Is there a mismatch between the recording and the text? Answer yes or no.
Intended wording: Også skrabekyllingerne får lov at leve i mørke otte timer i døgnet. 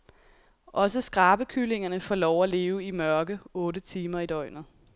no